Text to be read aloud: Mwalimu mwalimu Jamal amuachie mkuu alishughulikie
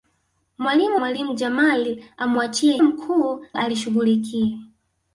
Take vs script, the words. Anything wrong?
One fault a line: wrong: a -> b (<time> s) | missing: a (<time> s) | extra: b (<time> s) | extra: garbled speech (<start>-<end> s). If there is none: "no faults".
no faults